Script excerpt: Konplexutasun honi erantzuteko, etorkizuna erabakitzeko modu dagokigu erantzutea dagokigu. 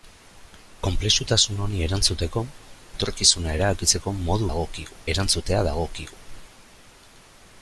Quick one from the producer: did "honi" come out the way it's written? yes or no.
yes